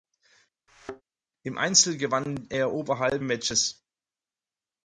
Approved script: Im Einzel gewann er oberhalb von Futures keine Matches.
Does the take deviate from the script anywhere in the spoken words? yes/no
yes